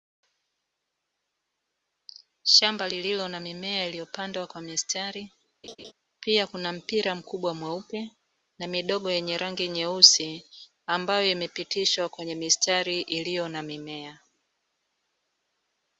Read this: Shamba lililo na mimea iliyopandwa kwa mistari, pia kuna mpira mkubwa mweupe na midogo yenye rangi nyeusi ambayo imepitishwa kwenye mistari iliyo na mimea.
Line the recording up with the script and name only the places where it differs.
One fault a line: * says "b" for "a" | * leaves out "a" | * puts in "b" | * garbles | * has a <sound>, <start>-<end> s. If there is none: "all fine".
* has a laugh, 5.6-5.9 s